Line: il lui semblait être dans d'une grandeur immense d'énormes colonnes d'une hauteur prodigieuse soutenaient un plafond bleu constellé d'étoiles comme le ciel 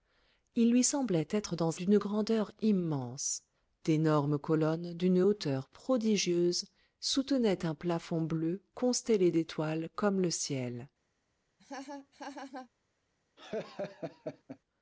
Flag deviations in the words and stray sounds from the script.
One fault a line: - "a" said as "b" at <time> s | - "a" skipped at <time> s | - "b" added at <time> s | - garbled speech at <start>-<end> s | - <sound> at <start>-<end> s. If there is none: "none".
- laugh at 11.6-12.7 s
- laugh at 13.4-14.6 s